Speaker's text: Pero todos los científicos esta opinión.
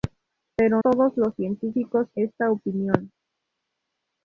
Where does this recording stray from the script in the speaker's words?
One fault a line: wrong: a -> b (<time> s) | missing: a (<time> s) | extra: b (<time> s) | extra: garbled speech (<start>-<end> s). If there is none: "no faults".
no faults